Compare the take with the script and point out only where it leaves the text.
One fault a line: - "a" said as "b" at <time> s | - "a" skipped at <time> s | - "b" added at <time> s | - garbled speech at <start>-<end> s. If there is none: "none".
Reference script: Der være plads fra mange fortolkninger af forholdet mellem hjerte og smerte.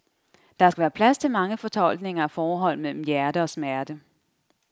- "skal" added at 0.7 s
- "fra" said as "til" at 1.2 s